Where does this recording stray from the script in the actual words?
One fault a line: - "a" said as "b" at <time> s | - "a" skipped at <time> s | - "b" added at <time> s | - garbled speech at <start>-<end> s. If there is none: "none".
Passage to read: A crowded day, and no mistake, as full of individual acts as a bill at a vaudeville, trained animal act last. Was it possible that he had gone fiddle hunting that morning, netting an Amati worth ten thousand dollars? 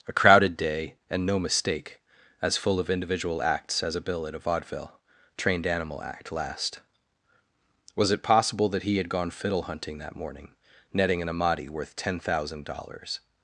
none